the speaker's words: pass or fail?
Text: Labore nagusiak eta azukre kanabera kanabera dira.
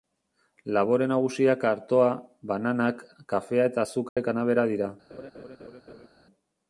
fail